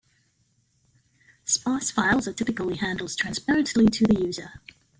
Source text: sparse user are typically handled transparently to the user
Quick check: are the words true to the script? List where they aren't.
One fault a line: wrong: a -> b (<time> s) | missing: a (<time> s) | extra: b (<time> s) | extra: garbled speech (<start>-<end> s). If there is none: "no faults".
wrong: user -> files (1.9 s)